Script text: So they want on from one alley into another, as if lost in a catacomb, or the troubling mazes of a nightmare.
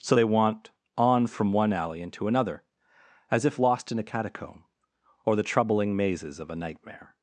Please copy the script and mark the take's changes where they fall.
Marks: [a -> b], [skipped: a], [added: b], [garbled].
So they want on from one alley into another, as if lost in a catacomb, or the troubling mazes of a nightmare.